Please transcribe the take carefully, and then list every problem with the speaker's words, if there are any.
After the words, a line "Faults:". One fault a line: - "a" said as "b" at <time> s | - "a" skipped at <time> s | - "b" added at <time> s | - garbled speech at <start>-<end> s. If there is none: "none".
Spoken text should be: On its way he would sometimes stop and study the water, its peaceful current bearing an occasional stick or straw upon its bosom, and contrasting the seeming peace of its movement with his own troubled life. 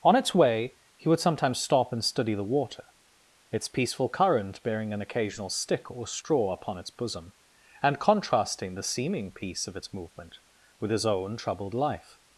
On its way he would sometimes stop and study the water, its peaceful current bearing an occasional stick or straw upon its bosom, and contrasting the seeming peace of its movement with his own troubled life.
Faults:
none